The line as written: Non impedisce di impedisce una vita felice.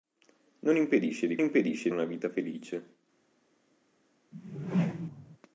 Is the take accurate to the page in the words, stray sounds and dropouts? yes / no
no